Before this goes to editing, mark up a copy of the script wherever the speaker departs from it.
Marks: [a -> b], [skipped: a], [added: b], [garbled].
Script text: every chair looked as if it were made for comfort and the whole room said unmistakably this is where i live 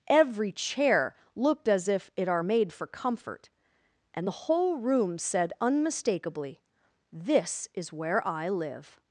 every chair looked as if it [were -> are] made for comfort and the whole room said unmistakably this is where i live